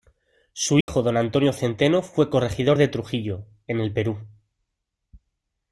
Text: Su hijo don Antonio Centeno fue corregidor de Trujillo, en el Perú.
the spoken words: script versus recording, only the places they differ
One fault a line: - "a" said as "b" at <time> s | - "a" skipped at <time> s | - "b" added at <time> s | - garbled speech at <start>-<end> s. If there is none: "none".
none